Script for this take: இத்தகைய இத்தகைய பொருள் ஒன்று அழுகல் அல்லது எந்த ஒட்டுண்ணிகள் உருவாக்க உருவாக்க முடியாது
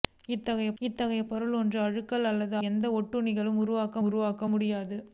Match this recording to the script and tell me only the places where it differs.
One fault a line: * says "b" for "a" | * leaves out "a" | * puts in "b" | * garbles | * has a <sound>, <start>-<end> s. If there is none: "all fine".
all fine